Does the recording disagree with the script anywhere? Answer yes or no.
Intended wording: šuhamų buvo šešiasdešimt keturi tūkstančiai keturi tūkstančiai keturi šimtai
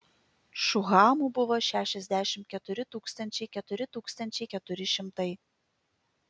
no